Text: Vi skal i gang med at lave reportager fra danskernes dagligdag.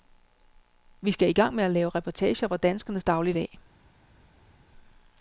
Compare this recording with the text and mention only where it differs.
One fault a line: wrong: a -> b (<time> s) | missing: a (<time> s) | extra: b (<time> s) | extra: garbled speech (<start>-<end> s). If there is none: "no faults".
no faults